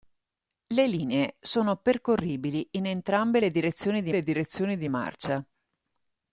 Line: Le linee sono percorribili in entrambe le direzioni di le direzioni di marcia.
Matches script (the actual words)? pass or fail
pass